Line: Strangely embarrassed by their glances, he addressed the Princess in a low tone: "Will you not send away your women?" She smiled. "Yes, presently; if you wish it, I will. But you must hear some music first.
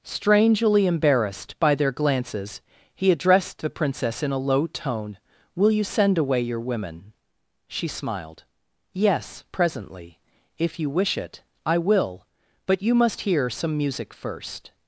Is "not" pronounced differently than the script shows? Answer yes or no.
yes